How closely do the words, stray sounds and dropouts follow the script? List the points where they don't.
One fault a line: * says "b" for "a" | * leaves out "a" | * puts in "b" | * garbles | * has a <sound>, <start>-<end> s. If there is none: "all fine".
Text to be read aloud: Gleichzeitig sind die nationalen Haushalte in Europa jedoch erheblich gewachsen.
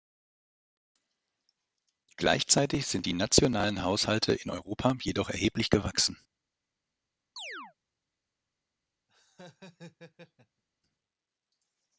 * has a chirp, 7.4-7.7 s
* has a laugh, 9.1-10.6 s